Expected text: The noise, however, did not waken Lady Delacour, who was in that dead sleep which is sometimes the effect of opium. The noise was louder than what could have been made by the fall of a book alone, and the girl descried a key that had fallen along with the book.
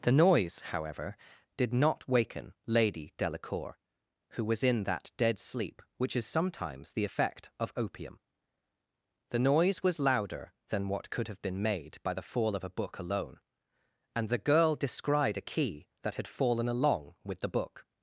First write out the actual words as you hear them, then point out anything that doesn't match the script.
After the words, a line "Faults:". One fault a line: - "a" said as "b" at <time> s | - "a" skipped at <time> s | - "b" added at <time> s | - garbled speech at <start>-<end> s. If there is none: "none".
The noise, however, did not waken Lady Delacour, who was in that dead sleep which is sometimes the effect of opium. The noise was louder than what could have been made by the fall of a book alone, and the girl descried a key that had fallen along with the book.
Faults:
none